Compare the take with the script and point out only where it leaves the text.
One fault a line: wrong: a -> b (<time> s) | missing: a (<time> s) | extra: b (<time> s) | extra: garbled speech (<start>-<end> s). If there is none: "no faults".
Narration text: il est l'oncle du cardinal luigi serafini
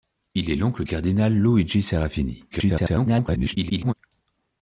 missing: du (0.8 s)
extra: garbled speech (2.5-3.9 s)